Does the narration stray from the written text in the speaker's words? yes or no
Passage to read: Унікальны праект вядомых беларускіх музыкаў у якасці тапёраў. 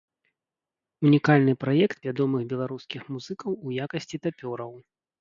no